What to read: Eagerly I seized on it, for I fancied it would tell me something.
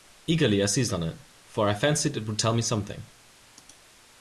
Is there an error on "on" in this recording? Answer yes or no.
no